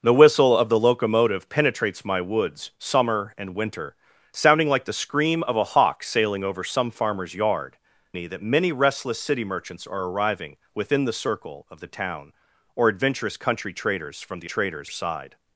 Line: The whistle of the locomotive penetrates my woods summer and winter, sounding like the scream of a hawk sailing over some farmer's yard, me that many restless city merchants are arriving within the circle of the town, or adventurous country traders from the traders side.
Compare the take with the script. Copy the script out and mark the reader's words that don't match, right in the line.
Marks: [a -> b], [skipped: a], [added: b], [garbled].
The whistle of the locomotive penetrates my woods summer and winter, sounding like the scream of a hawk sailing over some farmer's yard, me that many restless city merchants are arriving within the circle of the town, or adventurous country traders from the traders side.